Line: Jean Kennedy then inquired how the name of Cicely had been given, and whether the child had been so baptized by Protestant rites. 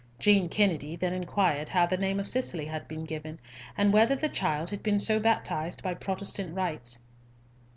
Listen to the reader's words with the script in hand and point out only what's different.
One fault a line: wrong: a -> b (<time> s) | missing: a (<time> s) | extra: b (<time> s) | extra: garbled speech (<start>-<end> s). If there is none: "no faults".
no faults